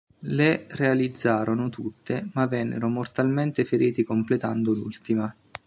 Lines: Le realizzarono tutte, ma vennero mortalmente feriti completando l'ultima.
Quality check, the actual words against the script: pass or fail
pass